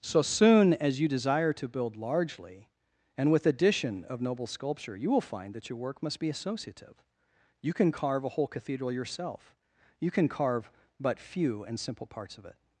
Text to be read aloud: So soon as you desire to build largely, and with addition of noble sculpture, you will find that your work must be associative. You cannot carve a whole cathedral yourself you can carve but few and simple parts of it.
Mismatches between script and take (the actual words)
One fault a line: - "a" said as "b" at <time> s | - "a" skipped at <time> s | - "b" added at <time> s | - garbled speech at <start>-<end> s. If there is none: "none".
- "cannot" said as "can" at 7.7 s